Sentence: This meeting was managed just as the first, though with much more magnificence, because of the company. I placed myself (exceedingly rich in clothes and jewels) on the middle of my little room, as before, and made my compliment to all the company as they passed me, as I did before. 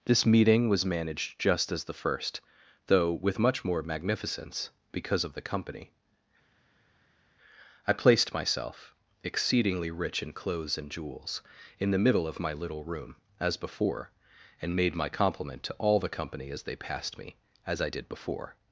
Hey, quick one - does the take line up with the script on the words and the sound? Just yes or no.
no